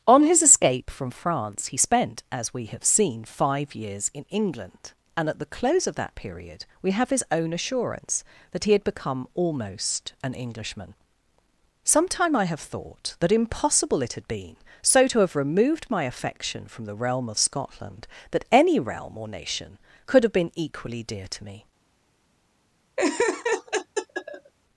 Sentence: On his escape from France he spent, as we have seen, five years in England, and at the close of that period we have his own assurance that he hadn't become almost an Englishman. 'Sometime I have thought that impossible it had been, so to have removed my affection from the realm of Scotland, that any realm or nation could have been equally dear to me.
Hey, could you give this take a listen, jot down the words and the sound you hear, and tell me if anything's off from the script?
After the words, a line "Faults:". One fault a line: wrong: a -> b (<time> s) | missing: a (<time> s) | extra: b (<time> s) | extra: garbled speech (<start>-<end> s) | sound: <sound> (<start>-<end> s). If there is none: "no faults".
On his escape from France he spent, as we have seen, five years in England, and at the close of that period we have his own assurance that he had become almost an Englishman. 'Sometime I have thought that impossible it had been, so to have removed my affection from the realm of Scotland, that any realm or nation could have been equally dear to me.
Faults:
wrong: hadn't -> had (8.7 s)
sound: laugh (23.0-24.5 s)